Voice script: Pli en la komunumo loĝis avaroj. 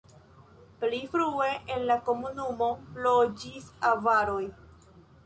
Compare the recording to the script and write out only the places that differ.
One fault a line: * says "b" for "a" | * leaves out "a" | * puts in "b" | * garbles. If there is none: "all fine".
* puts in "frue"